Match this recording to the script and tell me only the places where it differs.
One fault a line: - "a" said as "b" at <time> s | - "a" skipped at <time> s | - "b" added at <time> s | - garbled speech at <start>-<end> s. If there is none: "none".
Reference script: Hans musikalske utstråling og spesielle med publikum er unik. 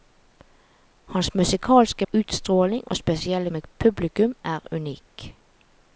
none